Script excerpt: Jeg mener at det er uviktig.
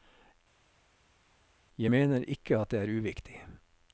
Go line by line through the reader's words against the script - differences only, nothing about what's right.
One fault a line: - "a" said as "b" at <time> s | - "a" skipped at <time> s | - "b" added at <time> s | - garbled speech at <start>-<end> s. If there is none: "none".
- "ikke" added at 2.3 s